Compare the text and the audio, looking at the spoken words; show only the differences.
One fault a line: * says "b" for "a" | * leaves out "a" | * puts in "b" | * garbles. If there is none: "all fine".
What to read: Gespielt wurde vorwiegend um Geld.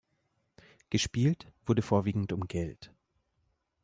all fine